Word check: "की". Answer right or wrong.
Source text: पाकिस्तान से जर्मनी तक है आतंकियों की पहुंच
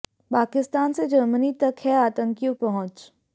wrong